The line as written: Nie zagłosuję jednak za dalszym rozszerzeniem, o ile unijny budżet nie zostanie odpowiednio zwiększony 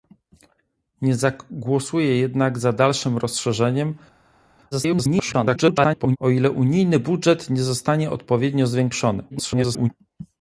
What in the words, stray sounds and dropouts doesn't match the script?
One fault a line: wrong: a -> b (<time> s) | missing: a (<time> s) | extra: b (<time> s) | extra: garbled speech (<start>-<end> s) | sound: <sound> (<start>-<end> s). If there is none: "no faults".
extra: garbled speech (4.7-6.2 s)
extra: garbled speech (9.3-9.9 s)